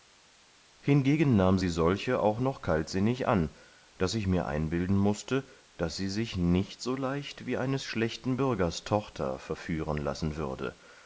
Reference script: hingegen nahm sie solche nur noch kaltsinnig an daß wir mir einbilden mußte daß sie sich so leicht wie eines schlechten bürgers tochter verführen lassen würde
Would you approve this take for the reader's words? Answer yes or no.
no